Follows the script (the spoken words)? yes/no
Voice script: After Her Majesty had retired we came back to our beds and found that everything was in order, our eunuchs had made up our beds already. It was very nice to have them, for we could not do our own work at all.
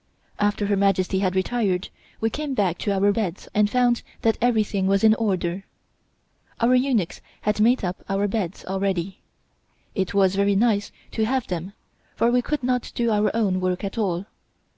yes